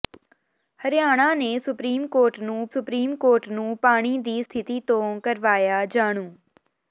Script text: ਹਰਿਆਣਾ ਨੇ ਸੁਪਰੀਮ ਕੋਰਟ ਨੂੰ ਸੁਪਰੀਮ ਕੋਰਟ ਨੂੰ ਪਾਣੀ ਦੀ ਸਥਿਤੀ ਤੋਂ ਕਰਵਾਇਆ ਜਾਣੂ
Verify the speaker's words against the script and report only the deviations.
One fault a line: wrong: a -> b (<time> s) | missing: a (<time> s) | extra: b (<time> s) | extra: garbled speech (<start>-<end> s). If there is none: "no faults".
no faults